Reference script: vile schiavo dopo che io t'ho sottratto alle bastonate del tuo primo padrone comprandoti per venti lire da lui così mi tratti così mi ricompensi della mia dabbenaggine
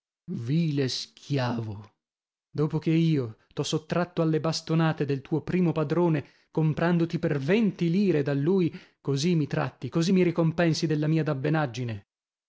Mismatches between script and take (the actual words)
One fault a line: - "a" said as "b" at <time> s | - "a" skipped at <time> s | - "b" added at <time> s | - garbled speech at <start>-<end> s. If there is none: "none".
none